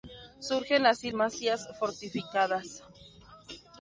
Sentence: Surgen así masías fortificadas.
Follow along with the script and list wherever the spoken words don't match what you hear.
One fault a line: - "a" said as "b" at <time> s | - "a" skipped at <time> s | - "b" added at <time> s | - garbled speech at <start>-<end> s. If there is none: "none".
none